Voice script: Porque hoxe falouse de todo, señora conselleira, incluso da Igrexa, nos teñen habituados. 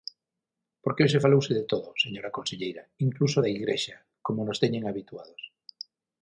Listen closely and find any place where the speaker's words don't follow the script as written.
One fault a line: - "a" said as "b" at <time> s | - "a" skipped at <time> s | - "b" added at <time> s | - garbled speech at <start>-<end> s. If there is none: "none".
- "como" added at 4.2 s